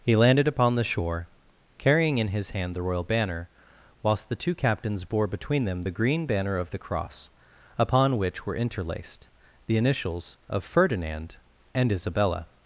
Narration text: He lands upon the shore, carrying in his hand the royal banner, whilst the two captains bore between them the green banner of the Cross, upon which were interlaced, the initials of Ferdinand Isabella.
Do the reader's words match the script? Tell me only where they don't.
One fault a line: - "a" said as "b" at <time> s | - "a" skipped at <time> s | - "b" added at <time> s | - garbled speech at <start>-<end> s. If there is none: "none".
- "lands" said as "landed" at 0.1 s
- "and" added at 11.7 s